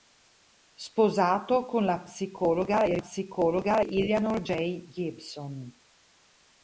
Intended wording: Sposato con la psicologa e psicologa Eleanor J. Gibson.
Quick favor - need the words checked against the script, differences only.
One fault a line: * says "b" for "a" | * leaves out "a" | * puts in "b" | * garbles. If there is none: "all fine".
all fine